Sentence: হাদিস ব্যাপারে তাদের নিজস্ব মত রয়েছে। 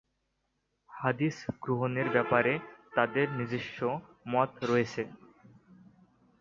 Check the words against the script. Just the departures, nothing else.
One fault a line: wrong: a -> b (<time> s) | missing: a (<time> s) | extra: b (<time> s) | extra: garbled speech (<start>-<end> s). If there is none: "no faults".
extra: গ্রহণের (1.6 s)